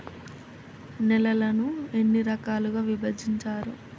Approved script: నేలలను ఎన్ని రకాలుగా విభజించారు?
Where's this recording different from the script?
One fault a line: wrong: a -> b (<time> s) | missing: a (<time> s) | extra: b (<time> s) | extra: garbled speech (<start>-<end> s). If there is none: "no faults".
no faults